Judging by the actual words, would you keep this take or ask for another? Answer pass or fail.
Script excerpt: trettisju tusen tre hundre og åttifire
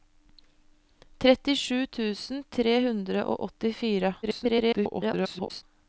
fail